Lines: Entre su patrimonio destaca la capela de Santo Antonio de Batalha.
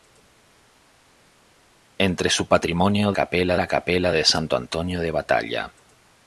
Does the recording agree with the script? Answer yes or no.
no